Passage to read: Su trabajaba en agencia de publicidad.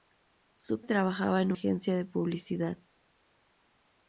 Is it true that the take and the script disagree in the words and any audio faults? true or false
false